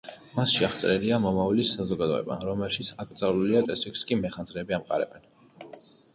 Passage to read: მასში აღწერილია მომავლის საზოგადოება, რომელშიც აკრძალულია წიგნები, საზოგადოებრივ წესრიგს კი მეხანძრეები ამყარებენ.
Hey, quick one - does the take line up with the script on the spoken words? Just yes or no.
no